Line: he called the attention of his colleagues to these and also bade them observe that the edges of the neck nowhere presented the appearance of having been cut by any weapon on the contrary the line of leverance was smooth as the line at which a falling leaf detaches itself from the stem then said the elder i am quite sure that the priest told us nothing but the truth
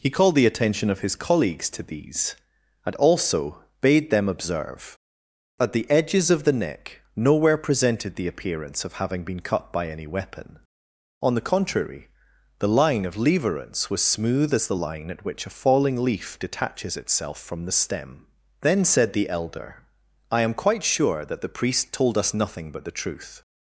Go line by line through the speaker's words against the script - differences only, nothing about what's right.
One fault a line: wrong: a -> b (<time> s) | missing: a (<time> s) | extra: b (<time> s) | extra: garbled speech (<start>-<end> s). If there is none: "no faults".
wrong: that -> at (5.6 s)